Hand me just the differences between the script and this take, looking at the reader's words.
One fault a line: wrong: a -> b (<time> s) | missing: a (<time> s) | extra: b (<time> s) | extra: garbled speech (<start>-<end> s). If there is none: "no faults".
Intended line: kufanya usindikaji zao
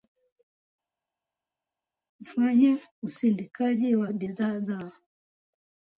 extra: wa bidhaa (4.0 s)